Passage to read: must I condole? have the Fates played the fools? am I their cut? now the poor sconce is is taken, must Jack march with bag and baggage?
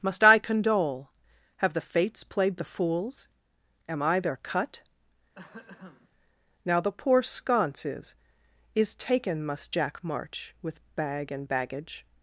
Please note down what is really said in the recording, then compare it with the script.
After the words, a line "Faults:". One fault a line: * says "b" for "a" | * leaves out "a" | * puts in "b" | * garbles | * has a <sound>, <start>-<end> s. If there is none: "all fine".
must I condole? have the Fates played the fools? am I their cut? now the poor sconce is is taken, must Jack march with bag and baggage?
Faults:
* has a throat clearing, 5.4-6.1 s